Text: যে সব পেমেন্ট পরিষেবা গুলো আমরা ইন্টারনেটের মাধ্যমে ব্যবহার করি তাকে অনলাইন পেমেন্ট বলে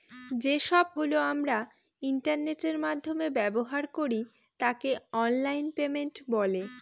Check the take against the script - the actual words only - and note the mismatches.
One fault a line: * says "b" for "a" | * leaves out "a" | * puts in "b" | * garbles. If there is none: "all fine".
* leaves out "পেমেন্ট পরিষেবা"